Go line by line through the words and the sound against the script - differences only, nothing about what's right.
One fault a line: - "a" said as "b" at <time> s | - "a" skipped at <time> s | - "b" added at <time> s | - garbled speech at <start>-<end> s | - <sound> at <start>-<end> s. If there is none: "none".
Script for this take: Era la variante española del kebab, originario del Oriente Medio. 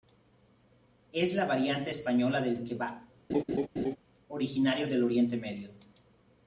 - "Era" said as "Es" at 1.1 s
- laugh at 3.3-4.0 s